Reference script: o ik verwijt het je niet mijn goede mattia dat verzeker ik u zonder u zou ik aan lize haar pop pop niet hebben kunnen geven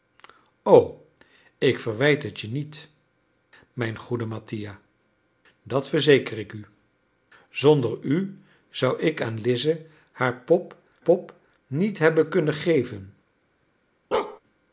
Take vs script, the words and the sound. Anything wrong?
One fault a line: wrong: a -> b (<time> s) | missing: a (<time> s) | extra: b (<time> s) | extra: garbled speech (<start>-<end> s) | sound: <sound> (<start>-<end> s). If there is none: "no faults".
sound: bark (14.1-14.4 s)